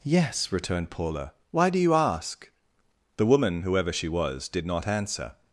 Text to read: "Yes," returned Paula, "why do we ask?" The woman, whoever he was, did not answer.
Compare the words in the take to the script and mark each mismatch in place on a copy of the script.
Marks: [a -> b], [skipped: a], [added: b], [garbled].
"Yes," returned Paula, "why do [we -> you] ask?" The woman, whoever [he -> she] was, did not answer.